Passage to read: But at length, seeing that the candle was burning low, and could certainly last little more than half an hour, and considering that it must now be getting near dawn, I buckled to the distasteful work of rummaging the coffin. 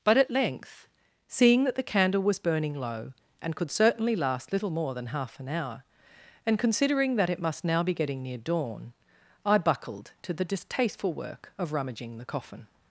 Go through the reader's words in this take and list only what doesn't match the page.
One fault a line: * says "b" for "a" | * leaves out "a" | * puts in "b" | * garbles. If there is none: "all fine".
all fine